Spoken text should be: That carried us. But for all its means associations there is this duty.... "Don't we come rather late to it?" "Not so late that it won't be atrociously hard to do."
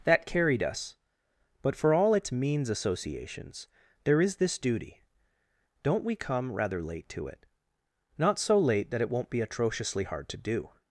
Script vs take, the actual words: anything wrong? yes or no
no